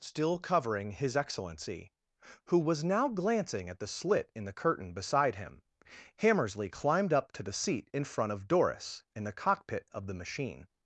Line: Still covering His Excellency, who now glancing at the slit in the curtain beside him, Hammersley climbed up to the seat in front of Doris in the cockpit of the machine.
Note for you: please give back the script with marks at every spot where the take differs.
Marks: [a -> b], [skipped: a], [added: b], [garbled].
Still covering His Excellency, who [added: was] now glancing at the slit in the curtain beside him, Hammersley climbed up to the seat in front of Doris in the cockpit of the machine.